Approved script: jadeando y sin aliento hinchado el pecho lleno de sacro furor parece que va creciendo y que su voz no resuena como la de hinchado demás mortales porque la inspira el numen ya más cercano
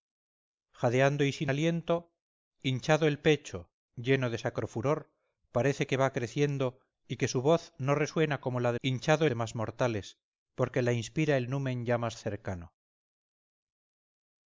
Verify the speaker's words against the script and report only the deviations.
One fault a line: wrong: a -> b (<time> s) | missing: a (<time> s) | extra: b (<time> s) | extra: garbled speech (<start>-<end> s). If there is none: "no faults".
no faults